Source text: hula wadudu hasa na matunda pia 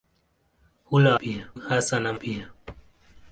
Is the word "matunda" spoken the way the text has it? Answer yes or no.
no